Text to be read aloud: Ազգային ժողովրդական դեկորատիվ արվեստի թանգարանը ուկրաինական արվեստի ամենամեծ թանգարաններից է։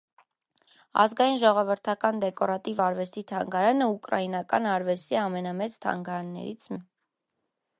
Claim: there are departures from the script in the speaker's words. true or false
false